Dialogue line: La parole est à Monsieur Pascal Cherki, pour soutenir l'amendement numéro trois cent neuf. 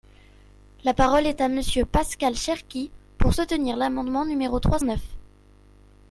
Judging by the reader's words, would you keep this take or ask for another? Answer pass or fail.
fail